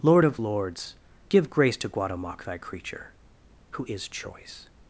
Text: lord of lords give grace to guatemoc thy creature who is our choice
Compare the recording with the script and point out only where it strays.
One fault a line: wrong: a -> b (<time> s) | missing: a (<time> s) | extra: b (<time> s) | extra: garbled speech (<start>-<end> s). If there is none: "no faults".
missing: our (4.1 s)